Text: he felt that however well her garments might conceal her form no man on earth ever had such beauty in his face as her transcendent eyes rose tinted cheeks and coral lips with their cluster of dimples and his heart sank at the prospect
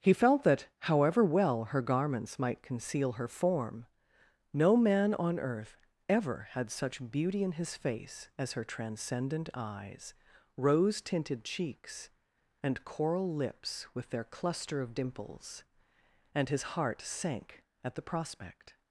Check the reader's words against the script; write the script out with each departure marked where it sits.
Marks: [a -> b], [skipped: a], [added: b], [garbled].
he felt that however well her garments might conceal her form no man on earth ever had such beauty in his face as her transcendent eyes rose tinted cheeks and coral lips with their cluster of dimples and his heart sank at the prospect